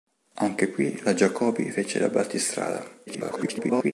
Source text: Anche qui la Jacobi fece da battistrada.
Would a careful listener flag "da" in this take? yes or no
no